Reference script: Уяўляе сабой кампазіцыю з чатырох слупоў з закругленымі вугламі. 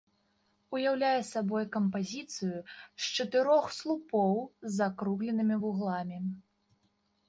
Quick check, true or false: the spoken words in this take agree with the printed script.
true